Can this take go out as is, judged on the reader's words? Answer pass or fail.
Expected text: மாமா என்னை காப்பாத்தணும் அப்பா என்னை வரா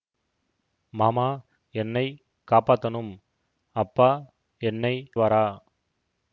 pass